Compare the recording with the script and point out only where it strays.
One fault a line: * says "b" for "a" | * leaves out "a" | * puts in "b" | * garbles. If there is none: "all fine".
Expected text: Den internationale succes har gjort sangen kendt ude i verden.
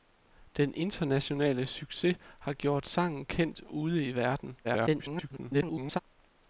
* garbles